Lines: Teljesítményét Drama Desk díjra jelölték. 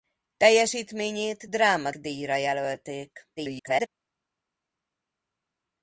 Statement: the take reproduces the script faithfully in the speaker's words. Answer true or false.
false